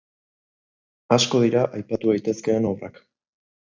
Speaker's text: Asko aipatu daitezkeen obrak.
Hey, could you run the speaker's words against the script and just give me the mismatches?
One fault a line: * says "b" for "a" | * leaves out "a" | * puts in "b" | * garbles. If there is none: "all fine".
* puts in "dira"